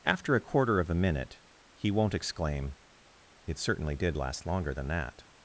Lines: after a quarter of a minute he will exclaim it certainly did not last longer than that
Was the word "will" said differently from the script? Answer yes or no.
yes